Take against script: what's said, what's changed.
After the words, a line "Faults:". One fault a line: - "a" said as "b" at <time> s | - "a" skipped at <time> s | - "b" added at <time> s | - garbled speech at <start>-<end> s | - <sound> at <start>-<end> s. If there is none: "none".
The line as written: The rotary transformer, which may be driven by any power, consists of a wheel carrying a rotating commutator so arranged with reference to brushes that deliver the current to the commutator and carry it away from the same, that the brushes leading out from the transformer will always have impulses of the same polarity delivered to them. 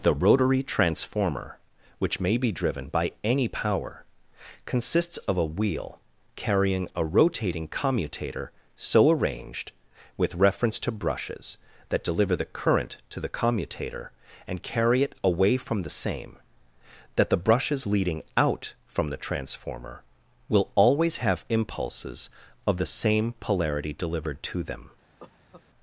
The rotary transformer, which may be driven by any power, consists of a wheel carrying a rotating commutator so arranged with reference to brushes that deliver the current to the commutator and carry it away from the same, that the brushes leading out from the transformer will always have impulses of the same polarity delivered to them.
Faults:
- cough at 25.2-25.6 s